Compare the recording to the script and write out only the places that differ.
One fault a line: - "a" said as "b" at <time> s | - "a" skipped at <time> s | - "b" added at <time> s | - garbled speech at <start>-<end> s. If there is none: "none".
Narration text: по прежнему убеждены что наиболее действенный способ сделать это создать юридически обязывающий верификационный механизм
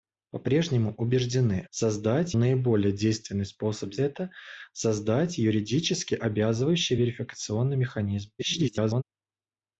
- "что" said as "создать" at 1.7 s
- "сделать" skipped at 3.9 s
- garbled speech at 8.4-9.0 s